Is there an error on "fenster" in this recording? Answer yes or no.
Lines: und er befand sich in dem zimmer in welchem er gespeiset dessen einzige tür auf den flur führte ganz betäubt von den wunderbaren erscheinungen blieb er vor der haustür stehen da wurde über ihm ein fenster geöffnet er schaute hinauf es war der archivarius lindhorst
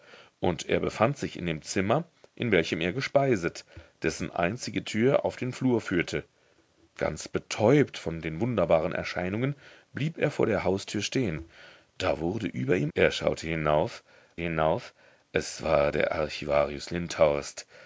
yes